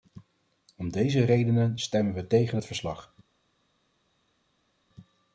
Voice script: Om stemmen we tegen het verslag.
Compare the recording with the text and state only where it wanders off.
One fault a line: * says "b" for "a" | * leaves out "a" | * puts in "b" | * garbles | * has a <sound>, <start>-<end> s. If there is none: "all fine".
* puts in "deze redenen"